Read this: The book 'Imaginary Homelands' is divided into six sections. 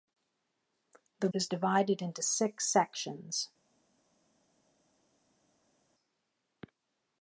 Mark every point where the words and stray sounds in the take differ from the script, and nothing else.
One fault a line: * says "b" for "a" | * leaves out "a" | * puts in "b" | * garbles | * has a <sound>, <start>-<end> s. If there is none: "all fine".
* leaves out "book Imaginary Homelands"